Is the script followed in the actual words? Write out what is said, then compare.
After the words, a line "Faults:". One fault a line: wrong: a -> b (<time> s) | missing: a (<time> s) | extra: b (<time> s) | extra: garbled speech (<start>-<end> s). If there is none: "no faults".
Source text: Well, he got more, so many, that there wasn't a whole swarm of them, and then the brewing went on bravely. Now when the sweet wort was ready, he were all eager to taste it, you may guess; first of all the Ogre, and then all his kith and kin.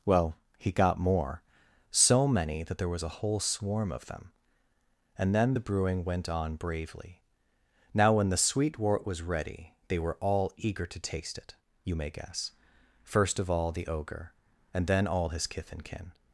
Well, he got more, so many, that there was a whole swarm of them, and then the brewing went on bravely. Now when the sweet wort was ready, they were all eager to taste it, you may guess; first of all the Ogre, and then all his kith and kin.
Faults:
wrong: wasn't -> was (2.9 s)
wrong: he -> they (9.9 s)